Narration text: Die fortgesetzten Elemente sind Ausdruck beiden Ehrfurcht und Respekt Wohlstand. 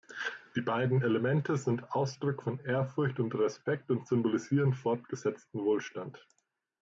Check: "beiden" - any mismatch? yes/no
yes